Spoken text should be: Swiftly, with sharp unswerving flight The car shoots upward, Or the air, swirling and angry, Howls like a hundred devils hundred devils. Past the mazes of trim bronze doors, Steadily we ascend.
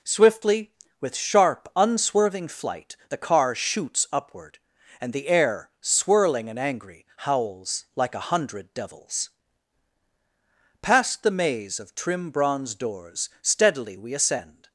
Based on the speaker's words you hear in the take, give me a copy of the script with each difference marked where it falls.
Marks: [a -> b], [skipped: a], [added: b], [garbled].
Swiftly, with sharp unswerving flight The car shoots upward, [Or -> And] the air, swirling and angry, Howls like a hundred devils [skipped: hundred devils.] Past the [mazes -> maze] of trim bronze doors, Steadily we ascend.